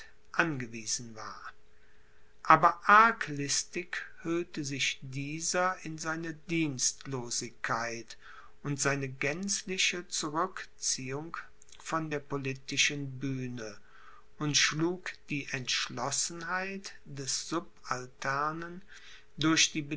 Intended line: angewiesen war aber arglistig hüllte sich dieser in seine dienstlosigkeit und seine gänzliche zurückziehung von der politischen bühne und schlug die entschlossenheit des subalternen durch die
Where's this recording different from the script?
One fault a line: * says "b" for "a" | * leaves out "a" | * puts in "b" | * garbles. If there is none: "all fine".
all fine